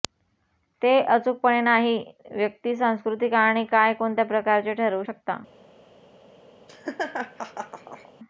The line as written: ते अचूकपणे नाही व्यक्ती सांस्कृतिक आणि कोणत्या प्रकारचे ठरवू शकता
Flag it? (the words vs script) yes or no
yes